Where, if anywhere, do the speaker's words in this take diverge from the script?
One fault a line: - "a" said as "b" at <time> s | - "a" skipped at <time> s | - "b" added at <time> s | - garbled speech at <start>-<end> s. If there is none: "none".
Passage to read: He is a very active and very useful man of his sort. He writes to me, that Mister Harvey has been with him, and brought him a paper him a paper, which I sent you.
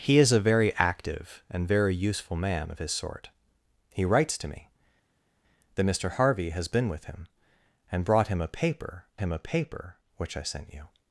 none